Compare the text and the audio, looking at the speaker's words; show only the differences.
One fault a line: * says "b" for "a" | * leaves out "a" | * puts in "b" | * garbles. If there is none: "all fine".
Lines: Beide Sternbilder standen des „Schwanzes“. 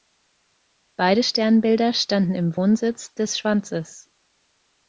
* puts in "im Wohnsitz"